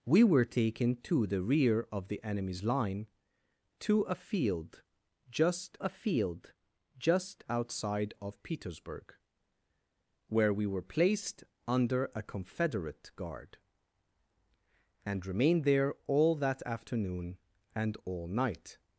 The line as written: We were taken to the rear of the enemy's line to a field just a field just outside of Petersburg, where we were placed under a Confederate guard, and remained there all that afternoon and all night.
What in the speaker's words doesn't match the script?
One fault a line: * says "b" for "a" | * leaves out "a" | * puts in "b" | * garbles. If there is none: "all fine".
all fine